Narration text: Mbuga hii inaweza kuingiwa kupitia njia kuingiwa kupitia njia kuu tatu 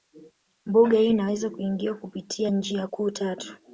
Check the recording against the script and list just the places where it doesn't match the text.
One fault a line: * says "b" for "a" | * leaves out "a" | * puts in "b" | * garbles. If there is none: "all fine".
* leaves out "kuingiwa kupitia njia"